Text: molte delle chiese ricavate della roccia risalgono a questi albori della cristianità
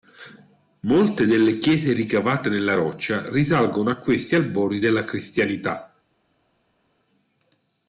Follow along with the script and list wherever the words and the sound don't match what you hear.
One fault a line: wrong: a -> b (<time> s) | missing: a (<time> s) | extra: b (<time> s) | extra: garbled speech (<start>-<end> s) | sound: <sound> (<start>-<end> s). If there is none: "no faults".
wrong: della -> nella (2.5 s)